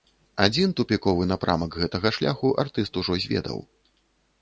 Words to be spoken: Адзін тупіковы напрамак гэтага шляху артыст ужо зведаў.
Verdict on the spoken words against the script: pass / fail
pass